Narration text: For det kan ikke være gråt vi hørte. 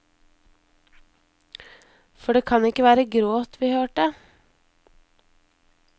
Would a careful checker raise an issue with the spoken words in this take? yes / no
no